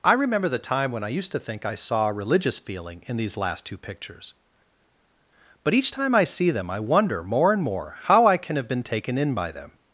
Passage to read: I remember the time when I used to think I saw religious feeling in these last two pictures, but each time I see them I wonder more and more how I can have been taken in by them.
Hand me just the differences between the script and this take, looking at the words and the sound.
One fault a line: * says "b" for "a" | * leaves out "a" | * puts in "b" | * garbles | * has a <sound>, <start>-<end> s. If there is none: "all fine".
* puts in "a"